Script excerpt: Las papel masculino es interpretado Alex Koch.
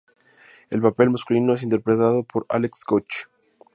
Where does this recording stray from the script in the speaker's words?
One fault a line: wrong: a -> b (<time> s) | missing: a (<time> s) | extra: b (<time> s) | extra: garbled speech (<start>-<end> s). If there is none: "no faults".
wrong: Las -> El (0.7 s)
extra: por (2.2 s)